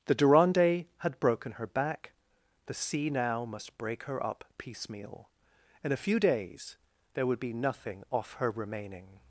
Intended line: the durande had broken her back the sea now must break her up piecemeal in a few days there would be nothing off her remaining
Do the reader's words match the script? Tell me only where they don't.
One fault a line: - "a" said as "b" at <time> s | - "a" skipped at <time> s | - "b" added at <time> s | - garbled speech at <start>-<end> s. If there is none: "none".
none